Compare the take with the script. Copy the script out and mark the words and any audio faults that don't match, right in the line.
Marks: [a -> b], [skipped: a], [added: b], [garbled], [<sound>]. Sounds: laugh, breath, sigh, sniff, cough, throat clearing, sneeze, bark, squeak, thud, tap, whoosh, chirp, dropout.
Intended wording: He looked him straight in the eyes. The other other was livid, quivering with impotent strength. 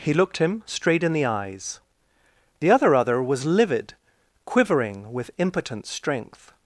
He looked him straight in the eyes. The other other was livid, quivering with impotent strength.